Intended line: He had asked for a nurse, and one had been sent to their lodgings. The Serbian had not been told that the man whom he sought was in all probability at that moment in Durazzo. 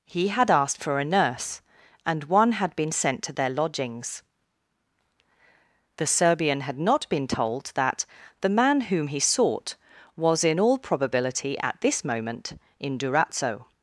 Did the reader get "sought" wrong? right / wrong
right